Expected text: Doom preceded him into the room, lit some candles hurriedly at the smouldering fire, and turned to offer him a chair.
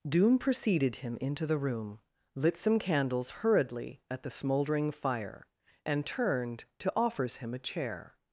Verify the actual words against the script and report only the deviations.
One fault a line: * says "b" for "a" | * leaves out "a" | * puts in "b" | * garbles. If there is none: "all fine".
* says "offers" for "offer"